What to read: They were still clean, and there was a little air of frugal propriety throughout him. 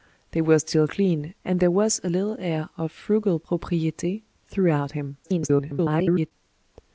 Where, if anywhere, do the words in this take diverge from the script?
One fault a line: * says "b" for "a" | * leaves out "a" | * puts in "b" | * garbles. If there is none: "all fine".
* garbles